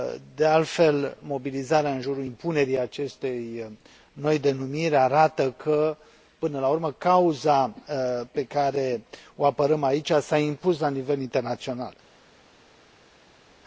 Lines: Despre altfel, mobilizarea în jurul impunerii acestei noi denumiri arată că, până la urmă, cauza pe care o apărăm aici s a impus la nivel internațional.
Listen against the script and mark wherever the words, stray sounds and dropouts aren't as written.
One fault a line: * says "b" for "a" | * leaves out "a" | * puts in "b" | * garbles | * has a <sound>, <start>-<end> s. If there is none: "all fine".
* says "De" for "Despre"